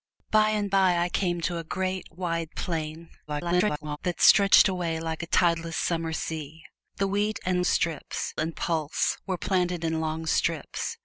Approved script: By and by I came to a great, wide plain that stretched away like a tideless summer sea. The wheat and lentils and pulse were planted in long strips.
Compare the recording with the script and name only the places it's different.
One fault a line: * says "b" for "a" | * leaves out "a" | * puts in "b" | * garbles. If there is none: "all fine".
* garbles
* says "strips" for "lentils"